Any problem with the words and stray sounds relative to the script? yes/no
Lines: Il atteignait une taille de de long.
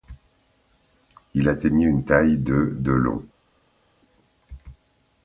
no